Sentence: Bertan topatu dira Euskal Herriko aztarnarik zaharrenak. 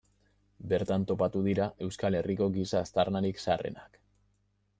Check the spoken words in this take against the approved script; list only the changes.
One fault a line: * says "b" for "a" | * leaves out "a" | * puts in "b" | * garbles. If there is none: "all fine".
* puts in "giza"